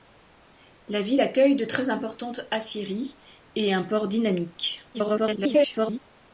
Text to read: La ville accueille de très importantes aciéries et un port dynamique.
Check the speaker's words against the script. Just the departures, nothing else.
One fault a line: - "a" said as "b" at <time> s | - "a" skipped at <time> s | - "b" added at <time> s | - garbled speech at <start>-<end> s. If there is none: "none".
- garbled speech at 4.9-6.0 s